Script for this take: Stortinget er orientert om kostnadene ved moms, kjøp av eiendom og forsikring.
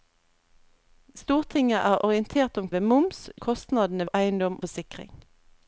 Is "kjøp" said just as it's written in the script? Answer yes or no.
no